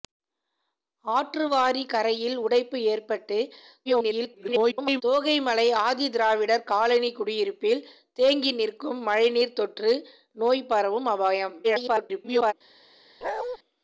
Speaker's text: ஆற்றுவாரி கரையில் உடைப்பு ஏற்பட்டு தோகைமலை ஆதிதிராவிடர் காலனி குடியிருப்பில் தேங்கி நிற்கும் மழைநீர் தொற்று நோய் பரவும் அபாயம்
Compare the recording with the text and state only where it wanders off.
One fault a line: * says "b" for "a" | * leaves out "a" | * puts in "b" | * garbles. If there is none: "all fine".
* garbles
* garbles